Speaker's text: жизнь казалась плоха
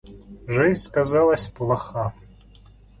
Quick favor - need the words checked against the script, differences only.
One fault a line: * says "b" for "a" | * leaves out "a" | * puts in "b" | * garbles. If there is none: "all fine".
all fine